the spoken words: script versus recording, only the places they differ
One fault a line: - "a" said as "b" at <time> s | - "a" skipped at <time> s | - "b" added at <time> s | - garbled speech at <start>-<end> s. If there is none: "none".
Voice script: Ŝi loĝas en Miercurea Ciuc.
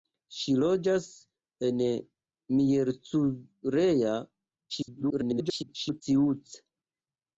- garbled speech at 4.7-6.0 s